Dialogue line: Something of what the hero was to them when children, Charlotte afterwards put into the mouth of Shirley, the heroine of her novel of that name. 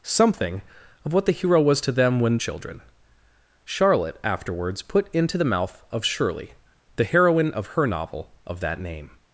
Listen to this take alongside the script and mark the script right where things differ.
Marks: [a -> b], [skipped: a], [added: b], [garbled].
Something of what the hero was to them when children, Charlotte afterwards put into the mouth of Shirley, the heroine of her novel of that name.